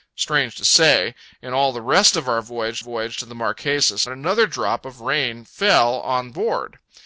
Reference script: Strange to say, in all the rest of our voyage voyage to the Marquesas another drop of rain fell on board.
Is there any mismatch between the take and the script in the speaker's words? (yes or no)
no